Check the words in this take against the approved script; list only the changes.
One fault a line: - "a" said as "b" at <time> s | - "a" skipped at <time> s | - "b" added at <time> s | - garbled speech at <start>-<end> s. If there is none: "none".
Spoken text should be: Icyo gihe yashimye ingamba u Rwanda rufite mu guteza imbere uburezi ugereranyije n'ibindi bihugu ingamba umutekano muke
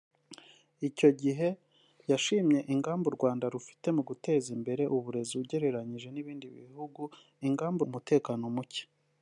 none